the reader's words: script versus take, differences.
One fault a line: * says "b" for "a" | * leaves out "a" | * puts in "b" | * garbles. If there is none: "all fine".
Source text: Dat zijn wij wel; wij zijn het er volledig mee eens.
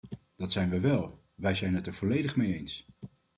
all fine